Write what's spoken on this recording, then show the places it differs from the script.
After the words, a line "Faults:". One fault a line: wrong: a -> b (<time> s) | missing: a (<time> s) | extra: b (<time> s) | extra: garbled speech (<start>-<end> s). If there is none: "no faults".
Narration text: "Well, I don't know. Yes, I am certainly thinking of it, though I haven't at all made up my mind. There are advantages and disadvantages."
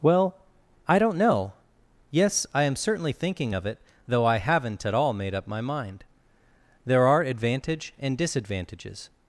"Well, I don't know. Yes, I am certainly thinking of it, though I haven't at all made up my mind. There are advantage and disadvantages."
Faults:
wrong: advantages -> advantage (7.2 s)